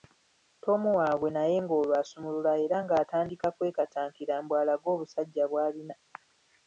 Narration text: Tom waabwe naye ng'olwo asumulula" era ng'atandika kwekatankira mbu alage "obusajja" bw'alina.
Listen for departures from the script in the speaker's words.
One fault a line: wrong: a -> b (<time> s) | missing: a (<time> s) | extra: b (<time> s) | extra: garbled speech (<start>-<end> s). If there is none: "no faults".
no faults